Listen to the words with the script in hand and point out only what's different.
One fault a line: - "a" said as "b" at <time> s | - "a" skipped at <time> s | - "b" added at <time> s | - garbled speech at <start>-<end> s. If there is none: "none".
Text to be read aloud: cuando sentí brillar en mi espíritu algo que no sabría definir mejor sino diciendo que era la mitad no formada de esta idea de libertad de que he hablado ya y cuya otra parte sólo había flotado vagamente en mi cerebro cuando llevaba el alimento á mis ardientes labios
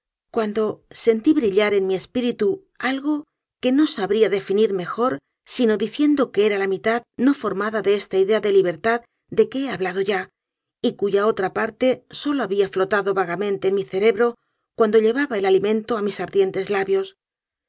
none